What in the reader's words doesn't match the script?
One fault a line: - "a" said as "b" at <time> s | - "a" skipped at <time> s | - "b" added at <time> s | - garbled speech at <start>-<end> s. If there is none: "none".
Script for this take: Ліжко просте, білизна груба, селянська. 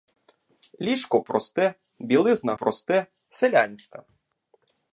- "груба" said as "просте" at 2.5 s